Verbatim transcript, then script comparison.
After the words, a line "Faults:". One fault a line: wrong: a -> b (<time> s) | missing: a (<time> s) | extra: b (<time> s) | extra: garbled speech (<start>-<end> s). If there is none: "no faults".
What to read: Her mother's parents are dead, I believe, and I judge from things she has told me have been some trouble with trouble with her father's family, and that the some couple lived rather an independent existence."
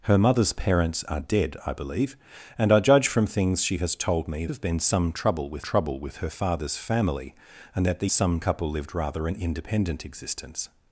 Her mother's parents are dead, I believe, and I judge from things she has told me have been some trouble with trouble with her father's family, and that the some couple lived rather an independent existence."
Faults:
no faults